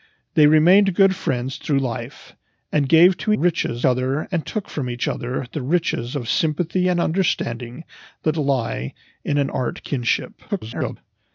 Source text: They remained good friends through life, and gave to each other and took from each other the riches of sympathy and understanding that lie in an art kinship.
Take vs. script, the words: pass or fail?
fail